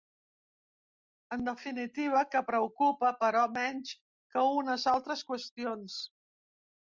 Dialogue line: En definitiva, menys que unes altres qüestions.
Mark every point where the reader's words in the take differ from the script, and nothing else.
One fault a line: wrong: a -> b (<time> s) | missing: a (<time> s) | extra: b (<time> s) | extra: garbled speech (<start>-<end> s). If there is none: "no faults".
extra: que preocupa però (2.3 s)